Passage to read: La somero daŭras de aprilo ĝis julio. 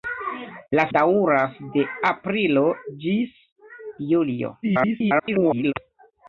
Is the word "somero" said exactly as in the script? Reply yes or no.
no